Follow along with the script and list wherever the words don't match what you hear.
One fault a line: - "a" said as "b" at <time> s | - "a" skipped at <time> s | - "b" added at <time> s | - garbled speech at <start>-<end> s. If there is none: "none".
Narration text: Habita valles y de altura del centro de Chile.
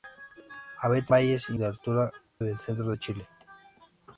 none